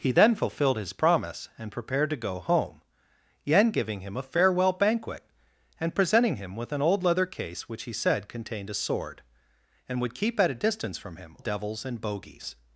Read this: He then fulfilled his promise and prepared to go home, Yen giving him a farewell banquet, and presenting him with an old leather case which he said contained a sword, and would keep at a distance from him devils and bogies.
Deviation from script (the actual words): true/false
false